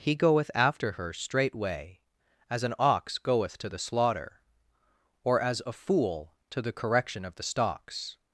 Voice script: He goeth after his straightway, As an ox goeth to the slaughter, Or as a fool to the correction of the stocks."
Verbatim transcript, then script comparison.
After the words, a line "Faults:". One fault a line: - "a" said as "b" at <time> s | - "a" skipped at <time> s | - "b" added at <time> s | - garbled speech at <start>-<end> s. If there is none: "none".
He goeth after her straightway, As an ox goeth to the slaughter, Or as a fool to the correction of the stocks."
Faults:
- "his" said as "her" at 0.9 s